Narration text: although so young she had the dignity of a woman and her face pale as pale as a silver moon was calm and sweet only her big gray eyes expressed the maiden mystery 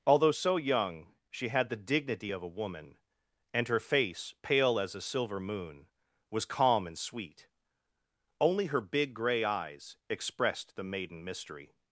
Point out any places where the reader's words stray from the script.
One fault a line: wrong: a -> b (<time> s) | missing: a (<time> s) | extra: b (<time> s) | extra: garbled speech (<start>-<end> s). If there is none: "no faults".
missing: pale as (4.9 s)